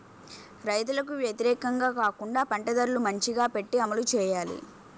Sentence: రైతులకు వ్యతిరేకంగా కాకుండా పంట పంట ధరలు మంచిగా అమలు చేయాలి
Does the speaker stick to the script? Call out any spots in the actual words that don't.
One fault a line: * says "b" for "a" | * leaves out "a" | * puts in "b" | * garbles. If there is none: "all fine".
* leaves out "పంట"
* puts in "పెట్టి"